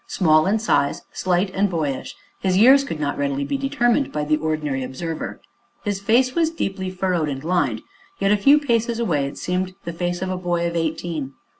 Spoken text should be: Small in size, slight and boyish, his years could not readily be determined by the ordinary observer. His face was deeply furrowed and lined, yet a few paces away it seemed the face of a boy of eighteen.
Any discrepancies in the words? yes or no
no